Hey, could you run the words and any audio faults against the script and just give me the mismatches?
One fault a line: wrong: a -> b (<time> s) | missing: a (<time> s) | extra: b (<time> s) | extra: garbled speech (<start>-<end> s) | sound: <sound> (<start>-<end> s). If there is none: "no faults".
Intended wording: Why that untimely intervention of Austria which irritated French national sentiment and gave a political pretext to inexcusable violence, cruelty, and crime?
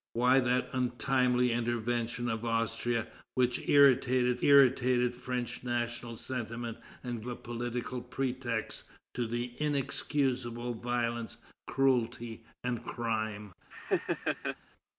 extra: irritated (4.4 s)
missing: gave (7.2 s)
sound: laugh (13.7-14.6 s)